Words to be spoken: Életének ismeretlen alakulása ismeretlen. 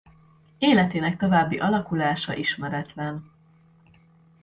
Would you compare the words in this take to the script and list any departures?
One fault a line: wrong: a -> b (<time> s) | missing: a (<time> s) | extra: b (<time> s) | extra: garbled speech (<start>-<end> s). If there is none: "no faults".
wrong: ismeretlen -> további (1.2 s)